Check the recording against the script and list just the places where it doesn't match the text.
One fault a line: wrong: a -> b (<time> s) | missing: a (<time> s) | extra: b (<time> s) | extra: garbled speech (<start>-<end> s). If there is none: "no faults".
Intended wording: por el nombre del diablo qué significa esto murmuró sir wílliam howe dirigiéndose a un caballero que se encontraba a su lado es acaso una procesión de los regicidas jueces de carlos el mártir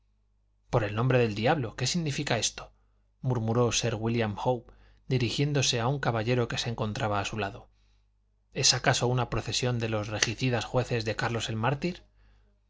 no faults